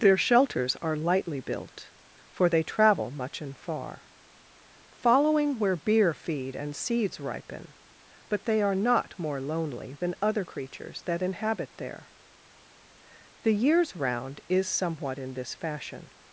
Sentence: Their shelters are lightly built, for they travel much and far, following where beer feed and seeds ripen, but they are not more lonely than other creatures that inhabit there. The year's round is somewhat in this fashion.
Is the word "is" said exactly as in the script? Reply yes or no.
yes